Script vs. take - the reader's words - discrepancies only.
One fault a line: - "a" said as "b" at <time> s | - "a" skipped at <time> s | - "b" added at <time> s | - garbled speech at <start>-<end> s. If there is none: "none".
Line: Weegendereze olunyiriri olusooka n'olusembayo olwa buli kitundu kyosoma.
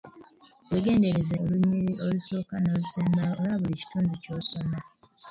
none